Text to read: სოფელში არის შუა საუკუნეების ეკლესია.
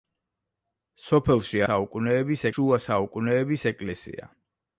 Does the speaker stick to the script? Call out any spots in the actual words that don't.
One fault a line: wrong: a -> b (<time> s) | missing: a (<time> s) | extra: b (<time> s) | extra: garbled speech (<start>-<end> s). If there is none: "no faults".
wrong: არის -> საუკუნეების (1.6 s)